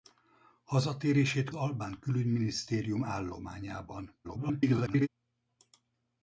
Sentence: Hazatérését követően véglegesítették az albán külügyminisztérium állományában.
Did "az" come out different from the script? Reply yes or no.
yes